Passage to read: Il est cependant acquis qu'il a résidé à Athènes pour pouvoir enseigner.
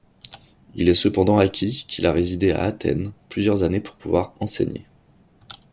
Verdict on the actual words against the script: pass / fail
fail